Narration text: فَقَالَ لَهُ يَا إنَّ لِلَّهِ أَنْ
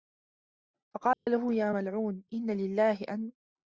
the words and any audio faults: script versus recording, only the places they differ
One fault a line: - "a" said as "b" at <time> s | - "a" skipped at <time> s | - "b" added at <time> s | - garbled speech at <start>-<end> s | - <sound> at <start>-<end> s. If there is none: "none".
- dropout at 1.1-1.3 s
- "مَلْعُونُ" added at 1.7 s